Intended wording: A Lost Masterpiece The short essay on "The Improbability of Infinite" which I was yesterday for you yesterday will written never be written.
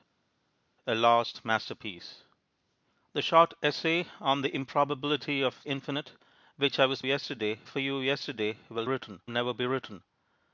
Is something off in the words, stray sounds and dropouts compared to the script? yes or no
no